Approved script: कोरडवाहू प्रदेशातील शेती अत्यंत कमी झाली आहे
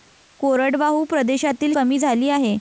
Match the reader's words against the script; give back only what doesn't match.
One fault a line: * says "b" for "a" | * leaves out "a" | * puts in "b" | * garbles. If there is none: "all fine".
* leaves out "शेती अत्यंत"